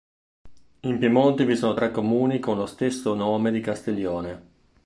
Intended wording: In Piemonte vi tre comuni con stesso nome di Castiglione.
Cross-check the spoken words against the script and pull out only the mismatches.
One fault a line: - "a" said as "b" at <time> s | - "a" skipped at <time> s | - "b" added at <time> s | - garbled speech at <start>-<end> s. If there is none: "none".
- "sono" added at 1.6 s
- "lo" added at 2.5 s